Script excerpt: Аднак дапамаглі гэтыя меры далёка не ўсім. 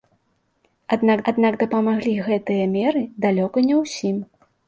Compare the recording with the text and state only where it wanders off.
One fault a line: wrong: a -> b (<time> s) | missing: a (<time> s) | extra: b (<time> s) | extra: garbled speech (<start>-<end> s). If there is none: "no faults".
extra: аднак (1.3 s)